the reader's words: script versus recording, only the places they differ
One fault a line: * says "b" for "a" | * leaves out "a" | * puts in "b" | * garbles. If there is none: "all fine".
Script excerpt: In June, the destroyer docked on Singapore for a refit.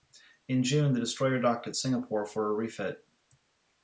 * says "at" for "on"